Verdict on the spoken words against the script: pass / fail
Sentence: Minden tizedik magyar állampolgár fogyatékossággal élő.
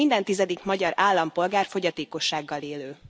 pass